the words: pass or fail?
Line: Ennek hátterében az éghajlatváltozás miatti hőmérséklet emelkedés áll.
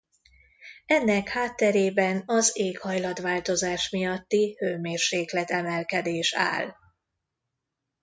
pass